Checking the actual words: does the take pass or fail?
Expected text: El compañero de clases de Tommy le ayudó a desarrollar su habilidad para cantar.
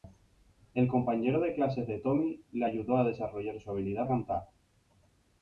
fail